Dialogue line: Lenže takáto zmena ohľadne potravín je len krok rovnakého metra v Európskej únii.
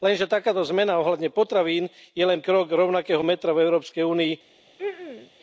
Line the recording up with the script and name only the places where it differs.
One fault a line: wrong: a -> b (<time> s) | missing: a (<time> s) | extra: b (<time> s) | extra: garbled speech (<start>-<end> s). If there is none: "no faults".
no faults